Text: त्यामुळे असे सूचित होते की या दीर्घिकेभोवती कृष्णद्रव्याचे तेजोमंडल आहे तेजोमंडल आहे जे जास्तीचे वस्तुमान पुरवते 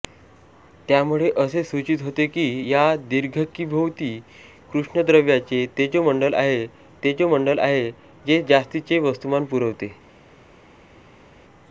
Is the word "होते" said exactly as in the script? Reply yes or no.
yes